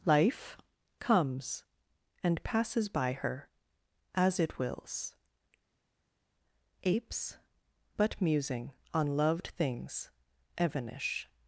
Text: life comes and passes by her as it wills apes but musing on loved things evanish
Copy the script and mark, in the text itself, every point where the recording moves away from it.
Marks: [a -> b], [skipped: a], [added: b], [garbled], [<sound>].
life comes and passes by her as it wills apes but musing on loved things evanish